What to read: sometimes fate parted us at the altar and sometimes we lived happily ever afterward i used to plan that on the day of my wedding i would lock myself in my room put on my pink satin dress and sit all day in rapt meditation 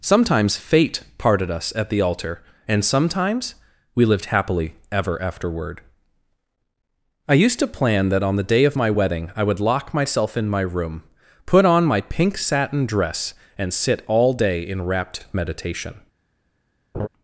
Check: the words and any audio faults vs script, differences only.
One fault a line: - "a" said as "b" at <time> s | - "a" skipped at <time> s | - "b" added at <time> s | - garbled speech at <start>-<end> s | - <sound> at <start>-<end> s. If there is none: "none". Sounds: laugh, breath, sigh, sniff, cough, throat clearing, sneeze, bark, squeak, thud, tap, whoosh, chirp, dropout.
- laugh at 16.9-17.1 s